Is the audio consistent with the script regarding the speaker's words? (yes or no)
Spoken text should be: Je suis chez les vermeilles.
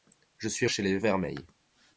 yes